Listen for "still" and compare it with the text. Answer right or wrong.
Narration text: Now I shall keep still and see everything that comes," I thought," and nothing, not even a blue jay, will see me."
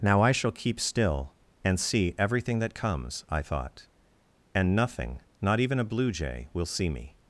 right